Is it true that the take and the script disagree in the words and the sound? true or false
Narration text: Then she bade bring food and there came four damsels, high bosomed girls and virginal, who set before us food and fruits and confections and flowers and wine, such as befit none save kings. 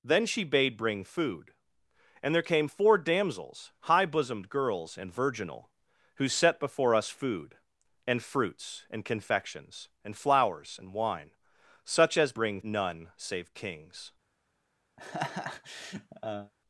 true